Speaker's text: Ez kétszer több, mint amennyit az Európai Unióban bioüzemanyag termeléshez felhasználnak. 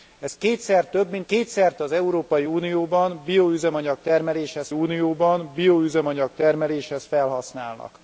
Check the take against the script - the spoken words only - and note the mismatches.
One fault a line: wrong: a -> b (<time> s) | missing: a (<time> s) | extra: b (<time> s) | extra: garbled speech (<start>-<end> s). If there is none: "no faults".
wrong: amennyit -> kétszer (1.2 s)
extra: Unióban bioüzemanyag termeléshez (4.7 s)